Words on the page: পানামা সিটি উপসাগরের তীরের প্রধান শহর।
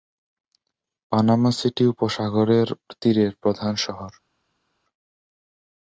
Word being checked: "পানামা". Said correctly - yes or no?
yes